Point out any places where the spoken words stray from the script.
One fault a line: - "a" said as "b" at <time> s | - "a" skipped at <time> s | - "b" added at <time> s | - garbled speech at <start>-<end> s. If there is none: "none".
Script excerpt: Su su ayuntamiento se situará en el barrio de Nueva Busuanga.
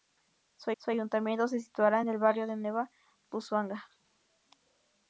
none